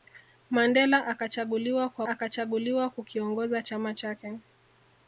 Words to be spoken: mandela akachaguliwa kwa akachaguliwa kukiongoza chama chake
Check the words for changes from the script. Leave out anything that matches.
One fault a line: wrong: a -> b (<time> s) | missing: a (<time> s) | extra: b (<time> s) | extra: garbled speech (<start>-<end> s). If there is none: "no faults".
no faults